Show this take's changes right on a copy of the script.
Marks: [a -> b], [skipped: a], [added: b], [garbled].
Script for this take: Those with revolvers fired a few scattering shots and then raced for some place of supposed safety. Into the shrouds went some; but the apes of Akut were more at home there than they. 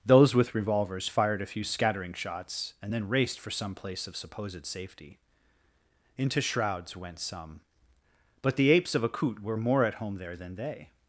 Those with revolvers fired a few scattering shots and then raced for some place of supposed safety. Into [skipped: the] shrouds went some; but the apes of Akut were more at home there than they.